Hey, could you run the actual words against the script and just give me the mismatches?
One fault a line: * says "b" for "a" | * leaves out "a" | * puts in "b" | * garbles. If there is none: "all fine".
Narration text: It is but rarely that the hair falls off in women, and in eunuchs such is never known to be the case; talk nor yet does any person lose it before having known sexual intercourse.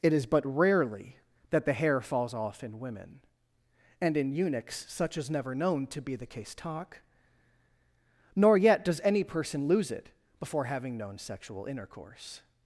all fine